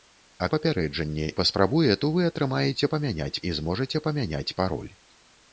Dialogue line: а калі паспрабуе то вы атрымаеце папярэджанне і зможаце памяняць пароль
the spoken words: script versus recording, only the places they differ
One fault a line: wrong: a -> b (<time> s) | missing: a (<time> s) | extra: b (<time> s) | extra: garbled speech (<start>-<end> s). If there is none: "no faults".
wrong: калі -> папярэджанне (0.5 s)
wrong: папярэджанне -> памяняць (2.9 s)